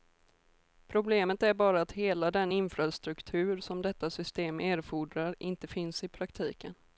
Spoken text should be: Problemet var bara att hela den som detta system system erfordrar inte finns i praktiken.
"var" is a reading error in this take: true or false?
true